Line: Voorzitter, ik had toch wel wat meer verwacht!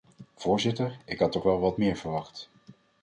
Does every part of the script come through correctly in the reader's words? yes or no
yes